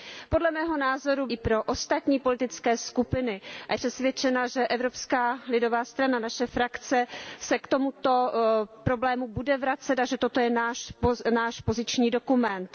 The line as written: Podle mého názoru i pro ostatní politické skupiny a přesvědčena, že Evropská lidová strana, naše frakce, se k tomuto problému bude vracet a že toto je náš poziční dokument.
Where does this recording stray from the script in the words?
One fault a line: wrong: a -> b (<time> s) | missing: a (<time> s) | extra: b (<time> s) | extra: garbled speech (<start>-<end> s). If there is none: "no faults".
no faults